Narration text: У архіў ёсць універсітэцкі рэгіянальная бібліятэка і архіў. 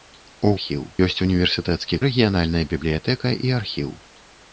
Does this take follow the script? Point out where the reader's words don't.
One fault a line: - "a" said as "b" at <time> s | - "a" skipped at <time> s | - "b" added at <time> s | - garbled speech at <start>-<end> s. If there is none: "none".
none